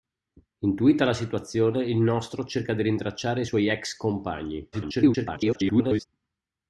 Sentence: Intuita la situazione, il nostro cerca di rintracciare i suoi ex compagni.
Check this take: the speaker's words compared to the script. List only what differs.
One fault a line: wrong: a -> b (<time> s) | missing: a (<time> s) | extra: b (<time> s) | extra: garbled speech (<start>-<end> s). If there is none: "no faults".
extra: garbled speech (4.7-6.1 s)